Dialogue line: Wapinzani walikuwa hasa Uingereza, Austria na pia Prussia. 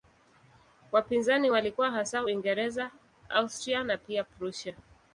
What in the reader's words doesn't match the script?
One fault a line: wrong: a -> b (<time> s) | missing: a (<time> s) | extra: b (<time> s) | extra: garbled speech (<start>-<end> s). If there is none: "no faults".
no faults